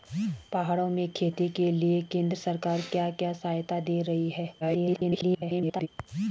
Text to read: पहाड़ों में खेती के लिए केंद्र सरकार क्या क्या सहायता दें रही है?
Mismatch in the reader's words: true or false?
true